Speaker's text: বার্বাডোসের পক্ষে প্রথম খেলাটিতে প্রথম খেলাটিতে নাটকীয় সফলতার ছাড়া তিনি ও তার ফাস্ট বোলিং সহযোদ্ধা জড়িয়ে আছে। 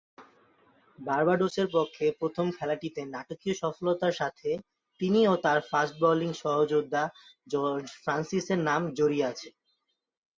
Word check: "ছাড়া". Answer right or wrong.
wrong